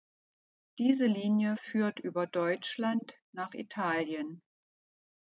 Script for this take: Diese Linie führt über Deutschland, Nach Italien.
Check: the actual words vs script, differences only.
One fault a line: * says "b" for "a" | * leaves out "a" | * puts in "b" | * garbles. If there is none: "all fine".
all fine